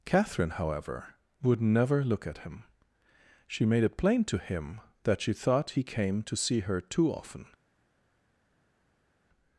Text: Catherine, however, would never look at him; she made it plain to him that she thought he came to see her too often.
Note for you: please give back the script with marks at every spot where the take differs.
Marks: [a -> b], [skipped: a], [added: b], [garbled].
Catherine, however, would never look at him; she made it plain to him that she thought he came to see her too often.